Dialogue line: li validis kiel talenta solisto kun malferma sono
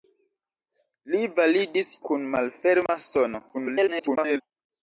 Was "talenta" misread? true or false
true